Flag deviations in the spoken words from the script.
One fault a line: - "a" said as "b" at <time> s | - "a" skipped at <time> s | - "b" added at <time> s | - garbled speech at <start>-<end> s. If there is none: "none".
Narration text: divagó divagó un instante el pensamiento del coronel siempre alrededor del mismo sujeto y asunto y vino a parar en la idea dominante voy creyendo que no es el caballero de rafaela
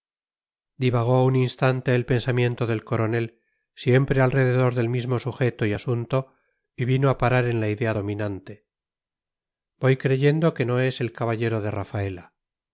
- "divagó" skipped at 1.2 s